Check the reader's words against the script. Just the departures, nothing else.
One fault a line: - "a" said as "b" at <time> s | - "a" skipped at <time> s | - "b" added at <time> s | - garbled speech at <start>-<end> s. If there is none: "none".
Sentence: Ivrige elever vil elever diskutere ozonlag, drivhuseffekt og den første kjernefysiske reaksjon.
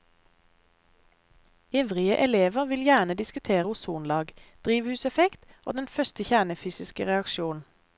- "elever" said as "gjerne" at 2.8 s